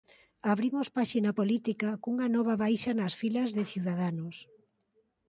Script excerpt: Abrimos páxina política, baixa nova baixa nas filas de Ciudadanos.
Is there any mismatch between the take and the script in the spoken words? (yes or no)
yes